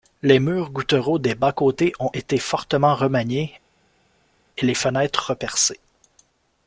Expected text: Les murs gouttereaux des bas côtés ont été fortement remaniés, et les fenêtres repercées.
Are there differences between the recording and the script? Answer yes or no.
no